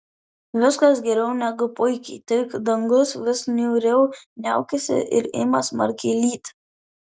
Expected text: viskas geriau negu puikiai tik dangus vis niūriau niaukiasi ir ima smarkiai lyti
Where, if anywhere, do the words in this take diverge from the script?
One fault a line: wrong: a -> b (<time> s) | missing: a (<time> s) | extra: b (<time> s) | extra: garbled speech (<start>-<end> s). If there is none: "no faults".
no faults